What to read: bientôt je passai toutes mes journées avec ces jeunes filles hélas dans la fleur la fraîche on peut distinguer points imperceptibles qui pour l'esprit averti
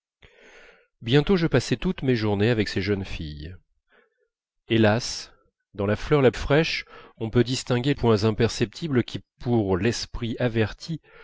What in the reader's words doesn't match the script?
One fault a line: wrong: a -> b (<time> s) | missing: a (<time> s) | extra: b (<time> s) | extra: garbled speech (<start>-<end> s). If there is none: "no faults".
no faults